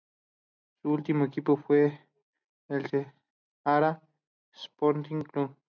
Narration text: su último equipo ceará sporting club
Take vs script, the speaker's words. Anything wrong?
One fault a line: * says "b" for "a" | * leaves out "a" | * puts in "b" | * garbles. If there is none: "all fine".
* puts in "fue el"